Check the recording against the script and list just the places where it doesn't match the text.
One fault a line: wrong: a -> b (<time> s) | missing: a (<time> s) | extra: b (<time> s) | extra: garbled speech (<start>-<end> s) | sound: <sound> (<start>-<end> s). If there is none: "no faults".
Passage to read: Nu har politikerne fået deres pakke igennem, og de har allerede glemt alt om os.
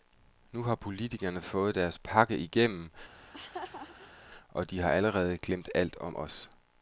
sound: laugh (3.2-4.3 s)